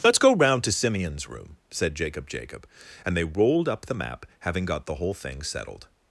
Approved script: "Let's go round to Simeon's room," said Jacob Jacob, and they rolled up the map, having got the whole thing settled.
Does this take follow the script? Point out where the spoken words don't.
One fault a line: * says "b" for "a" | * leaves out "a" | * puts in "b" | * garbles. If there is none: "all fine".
all fine